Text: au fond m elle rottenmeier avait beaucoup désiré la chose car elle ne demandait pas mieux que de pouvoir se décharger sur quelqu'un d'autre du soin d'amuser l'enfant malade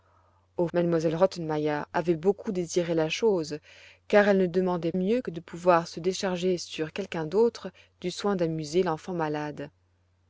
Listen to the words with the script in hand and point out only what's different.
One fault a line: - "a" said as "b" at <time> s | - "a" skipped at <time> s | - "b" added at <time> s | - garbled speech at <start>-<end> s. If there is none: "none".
- "fond" skipped at 0.7 s
- "pas" skipped at 4.9 s